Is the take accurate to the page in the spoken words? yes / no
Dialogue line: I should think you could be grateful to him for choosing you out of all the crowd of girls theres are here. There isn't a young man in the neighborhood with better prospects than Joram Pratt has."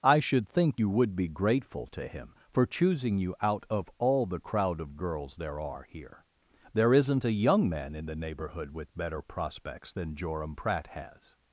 no